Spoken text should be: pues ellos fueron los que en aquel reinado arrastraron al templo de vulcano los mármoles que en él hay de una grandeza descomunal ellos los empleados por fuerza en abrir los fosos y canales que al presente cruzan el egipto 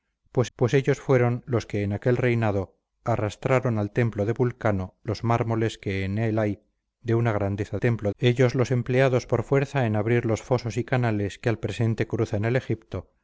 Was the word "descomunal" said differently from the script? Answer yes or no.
yes